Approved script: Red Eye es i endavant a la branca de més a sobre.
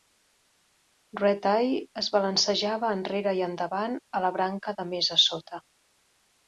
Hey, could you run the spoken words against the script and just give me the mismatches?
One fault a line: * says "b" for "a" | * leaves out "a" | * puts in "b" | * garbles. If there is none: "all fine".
* puts in "balancejava enrere"
* says "sota" for "sobre"